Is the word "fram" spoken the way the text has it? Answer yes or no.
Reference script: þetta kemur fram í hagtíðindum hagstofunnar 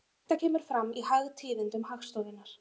yes